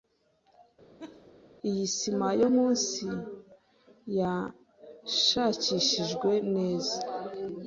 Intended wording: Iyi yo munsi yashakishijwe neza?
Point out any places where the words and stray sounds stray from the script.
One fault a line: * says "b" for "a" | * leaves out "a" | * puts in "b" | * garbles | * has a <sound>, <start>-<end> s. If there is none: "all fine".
* has a laugh, 1.0-1.3 s
* puts in "sima"